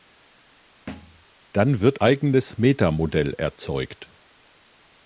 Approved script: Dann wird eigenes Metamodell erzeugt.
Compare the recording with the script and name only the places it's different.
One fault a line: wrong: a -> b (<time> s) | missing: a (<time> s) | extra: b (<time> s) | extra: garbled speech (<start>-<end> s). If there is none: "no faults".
no faults